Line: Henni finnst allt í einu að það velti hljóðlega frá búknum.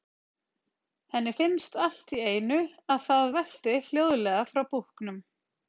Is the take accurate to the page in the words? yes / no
yes